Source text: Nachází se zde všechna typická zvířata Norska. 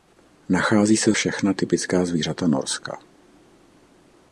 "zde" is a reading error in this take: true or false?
true